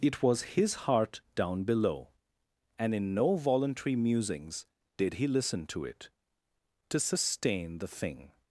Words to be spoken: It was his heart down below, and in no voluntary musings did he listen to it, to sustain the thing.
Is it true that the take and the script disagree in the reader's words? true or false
false